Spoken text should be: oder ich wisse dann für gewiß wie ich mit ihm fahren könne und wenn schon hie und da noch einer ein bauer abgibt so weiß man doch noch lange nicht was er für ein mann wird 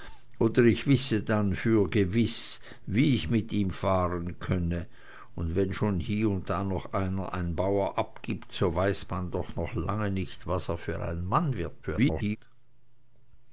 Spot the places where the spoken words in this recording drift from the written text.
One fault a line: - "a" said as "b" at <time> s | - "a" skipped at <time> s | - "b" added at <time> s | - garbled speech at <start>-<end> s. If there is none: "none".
- garbled speech at 11.8-12.4 s